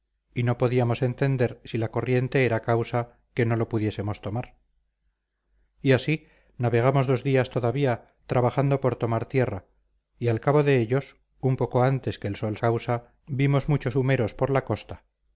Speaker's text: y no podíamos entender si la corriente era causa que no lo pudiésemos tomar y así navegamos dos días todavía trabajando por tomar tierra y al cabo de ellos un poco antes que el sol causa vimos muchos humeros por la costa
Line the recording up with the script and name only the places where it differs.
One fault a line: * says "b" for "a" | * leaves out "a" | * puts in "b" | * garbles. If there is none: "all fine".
all fine